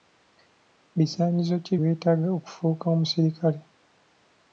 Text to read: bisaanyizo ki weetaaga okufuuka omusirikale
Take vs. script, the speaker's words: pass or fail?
pass